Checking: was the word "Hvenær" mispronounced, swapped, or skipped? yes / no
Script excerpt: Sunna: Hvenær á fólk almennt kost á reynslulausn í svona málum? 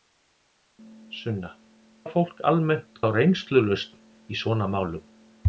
yes